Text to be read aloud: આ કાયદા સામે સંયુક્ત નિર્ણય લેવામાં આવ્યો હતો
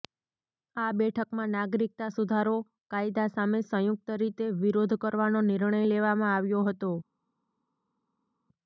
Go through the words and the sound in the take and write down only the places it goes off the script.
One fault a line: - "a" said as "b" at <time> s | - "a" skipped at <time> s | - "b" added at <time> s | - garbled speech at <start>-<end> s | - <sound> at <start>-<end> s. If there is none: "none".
- "બેઠકમાં નાગરિકતા સુધારો" added at 0.9 s
- "રીતે વિરોધ કરવાનો" added at 4.2 s